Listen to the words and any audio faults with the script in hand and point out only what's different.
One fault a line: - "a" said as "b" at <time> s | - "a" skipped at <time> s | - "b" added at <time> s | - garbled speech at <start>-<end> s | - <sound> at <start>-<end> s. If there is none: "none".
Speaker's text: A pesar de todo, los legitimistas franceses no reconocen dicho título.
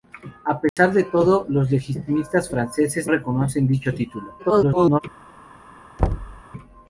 - dropout at 0.7-0.8 s
- "no" skipped at 3.1 s
- garbled speech at 4.4-5.0 s
- thud at 6.0-6.4 s